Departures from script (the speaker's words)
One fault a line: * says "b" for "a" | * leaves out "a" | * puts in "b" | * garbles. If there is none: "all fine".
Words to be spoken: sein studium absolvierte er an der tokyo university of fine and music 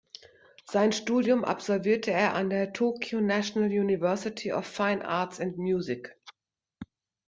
* puts in "national"
* puts in "arts"